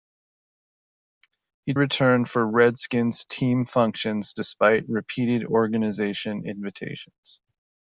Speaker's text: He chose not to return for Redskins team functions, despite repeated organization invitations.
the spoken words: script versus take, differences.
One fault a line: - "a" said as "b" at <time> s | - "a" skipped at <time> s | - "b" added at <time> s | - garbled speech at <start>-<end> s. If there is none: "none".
- "chose not to" skipped at 1.8 s